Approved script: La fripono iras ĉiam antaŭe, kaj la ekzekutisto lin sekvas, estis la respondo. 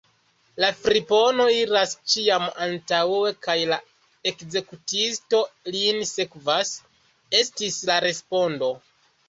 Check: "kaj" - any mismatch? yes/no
no